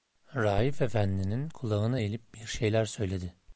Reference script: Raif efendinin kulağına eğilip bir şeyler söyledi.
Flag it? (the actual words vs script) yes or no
no